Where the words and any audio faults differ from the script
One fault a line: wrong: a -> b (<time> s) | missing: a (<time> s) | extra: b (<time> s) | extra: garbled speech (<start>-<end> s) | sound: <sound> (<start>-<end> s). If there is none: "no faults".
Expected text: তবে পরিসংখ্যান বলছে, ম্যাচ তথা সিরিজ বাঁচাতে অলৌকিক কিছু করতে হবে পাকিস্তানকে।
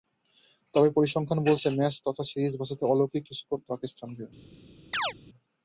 missing: হবে (3.7 s)
sound: chirp (4.9-5.1 s)